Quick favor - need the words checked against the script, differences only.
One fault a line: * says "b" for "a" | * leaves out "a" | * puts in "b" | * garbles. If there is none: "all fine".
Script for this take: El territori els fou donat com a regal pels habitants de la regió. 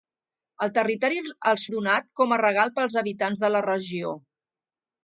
* leaves out "fou"